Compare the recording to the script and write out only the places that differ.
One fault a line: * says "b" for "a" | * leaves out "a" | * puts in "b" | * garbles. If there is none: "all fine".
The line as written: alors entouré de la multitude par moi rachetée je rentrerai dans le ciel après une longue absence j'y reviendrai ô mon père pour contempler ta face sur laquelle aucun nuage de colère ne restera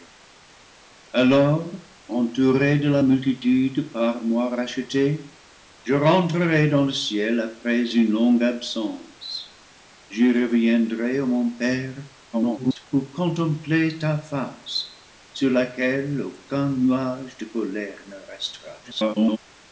* garbles
* garbles